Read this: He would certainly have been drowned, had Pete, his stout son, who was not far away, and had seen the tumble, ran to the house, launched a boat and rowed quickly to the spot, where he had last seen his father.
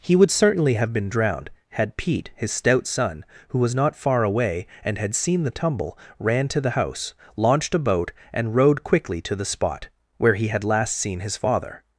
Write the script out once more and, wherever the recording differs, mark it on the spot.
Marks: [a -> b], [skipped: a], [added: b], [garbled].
He would certainly have been drowned, had Pete, his stout son, who was not far away, and had seen the tumble, ran to the house, launched a boat and rowed quickly to the spot, where he had last seen his father.